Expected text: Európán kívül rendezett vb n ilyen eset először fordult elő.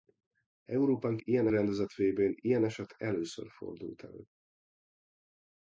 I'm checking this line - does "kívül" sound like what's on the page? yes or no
no